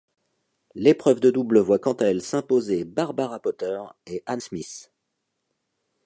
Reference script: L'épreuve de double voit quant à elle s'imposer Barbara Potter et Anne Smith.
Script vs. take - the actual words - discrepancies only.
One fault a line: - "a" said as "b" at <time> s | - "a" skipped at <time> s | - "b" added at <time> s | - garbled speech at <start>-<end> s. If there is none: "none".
none